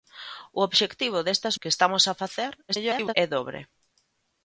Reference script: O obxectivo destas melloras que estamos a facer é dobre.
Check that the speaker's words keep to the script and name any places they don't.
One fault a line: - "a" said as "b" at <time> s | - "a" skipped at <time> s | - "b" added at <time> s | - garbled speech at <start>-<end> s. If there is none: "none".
- "melloras" skipped at 1.6 s
- garbled speech at 2.7-3.1 s